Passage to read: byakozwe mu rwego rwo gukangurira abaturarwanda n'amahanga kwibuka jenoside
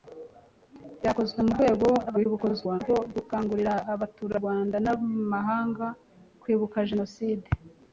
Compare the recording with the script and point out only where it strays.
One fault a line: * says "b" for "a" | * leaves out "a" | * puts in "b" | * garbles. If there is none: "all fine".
* garbles